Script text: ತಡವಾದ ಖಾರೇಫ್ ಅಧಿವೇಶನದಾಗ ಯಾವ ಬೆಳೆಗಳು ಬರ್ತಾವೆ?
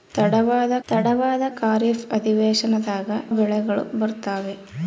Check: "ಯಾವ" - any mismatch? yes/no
yes